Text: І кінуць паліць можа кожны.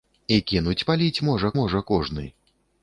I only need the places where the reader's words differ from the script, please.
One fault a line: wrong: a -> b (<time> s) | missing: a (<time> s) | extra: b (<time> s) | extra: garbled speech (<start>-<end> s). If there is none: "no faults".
extra: можа (1.6 s)